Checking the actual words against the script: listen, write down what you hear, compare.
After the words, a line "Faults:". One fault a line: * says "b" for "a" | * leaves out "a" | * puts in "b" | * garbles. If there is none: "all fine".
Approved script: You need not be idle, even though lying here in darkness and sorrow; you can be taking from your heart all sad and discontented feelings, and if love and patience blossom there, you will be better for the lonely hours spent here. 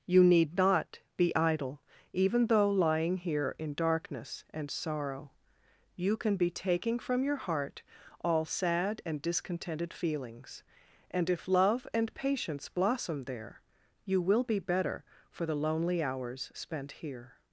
You need not be idle, even though lying here in darkness and sorrow; you can be taking from your heart all sad and discontented feelings, and if love and patience blossom there, you will be better for the lonely hours spent here.
Faults:
all fine